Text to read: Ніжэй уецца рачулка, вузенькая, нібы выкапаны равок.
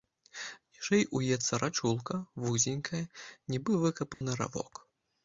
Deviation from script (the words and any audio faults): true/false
true